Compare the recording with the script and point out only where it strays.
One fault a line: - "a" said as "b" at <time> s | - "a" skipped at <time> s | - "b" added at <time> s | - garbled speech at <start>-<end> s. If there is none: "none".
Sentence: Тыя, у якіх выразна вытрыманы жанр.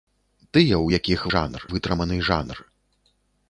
- "выразна" said as "жанр" at 1.4 s